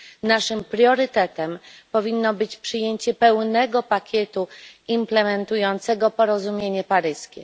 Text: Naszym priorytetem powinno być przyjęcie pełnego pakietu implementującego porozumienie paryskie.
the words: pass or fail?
pass